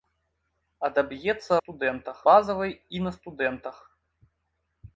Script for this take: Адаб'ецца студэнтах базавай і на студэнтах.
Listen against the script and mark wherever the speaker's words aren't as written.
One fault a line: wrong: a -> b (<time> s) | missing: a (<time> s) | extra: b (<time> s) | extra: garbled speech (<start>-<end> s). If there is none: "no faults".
no faults